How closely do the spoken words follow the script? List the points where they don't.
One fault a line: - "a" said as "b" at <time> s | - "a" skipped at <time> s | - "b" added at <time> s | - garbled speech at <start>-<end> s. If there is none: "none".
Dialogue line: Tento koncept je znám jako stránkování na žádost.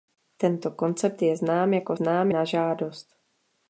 - "stránkování" said as "znám" at 1.9 s